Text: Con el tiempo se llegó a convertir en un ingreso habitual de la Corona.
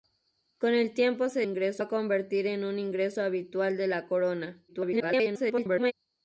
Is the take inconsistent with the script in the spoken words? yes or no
yes